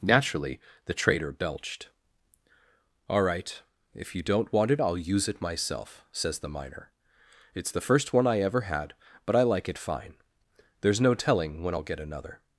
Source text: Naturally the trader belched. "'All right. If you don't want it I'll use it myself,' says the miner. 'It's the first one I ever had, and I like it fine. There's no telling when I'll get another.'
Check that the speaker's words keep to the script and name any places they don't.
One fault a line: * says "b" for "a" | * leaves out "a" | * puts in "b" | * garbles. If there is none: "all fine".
* says "but" for "and"